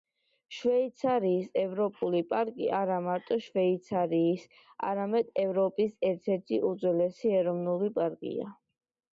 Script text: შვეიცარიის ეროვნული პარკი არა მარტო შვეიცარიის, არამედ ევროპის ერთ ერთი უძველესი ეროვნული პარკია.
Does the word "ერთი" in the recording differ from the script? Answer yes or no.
no